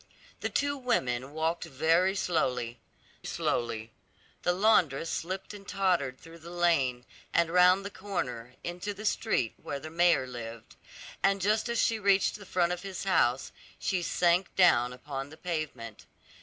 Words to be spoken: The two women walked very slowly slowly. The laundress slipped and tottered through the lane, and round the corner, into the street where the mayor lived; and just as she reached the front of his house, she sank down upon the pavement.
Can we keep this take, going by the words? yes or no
yes